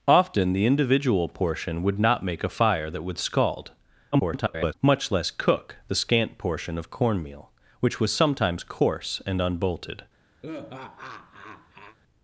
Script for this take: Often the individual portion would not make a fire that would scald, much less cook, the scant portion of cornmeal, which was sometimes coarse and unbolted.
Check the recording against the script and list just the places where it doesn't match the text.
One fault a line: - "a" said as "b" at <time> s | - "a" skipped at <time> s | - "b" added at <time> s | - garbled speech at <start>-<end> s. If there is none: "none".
- garbled speech at 4.1-4.7 s